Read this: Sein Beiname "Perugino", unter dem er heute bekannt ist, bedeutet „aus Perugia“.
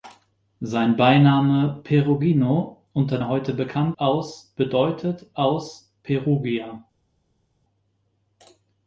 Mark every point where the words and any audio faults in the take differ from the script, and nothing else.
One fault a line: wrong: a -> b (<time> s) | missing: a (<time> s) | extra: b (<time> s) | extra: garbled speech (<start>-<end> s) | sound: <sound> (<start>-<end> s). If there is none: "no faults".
missing: dem (3.2 s)
wrong: ist -> aus (4.0 s)